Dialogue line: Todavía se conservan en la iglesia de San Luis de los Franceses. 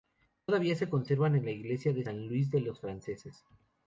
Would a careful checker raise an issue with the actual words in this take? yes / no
no